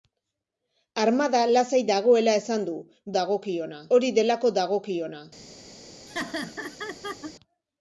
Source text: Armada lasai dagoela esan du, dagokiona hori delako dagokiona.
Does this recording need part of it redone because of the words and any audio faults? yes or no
yes